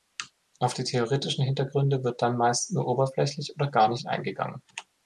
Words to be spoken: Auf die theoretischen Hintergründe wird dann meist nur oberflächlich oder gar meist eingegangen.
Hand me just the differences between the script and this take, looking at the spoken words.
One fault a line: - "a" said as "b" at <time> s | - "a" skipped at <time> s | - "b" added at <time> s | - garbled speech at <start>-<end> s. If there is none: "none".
- "meist" said as "nicht" at 3.9 s